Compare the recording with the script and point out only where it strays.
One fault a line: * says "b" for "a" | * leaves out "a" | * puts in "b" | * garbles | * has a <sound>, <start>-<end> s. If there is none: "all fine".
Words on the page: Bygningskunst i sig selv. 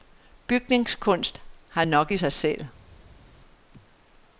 * puts in "har nok"